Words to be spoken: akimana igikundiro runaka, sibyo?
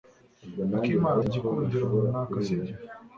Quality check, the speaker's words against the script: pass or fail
pass